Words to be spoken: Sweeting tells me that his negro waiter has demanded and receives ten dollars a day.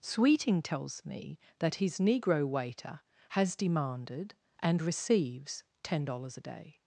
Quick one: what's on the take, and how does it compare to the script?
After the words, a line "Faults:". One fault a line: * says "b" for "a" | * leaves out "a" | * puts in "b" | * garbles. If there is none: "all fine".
Sweeting tells me that his negro waiter has demanded and receives ten dollars a day.
Faults:
all fine